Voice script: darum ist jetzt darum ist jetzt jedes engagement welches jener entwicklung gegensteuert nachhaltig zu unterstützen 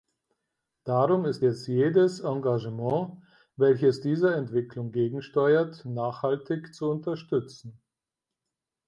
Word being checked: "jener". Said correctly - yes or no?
no